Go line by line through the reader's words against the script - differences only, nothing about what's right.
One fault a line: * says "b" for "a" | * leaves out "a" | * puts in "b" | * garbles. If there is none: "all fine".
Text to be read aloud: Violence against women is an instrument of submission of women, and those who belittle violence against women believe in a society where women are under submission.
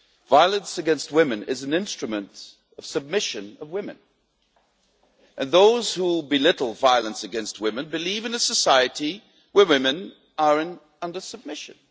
all fine